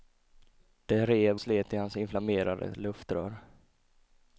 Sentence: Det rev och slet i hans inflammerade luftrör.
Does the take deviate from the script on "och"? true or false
true